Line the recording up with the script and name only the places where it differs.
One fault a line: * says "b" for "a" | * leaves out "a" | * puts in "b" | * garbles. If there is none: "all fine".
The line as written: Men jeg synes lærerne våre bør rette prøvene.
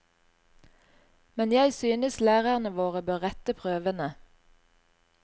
all fine